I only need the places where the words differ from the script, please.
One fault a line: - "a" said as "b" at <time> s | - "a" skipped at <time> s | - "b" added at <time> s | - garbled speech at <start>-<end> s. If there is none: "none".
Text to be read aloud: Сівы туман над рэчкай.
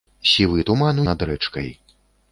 none